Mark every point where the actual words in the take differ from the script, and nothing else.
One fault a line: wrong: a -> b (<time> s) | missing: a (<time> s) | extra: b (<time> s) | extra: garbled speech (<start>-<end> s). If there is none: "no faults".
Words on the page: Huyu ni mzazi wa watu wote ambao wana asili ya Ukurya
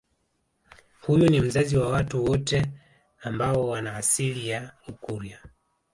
no faults